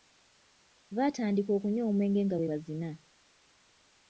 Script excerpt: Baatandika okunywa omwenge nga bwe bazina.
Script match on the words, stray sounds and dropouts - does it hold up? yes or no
yes